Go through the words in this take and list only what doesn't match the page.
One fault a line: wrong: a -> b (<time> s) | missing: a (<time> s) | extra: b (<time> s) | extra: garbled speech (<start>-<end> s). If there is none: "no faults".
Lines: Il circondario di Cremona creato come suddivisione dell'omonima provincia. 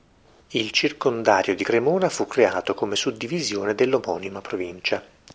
extra: fu (2.1 s)